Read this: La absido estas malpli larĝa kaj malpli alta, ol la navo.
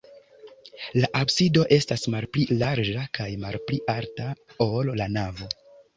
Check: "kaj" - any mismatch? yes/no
no